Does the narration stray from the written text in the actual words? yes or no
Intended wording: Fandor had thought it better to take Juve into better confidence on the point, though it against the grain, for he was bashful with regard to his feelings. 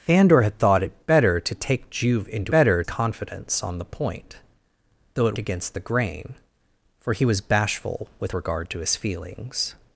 no